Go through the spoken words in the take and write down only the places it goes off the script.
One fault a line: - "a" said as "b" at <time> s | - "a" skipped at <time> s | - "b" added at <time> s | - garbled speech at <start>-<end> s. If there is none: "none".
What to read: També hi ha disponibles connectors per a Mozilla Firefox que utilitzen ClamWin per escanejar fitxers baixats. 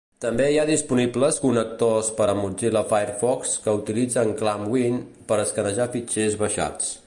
none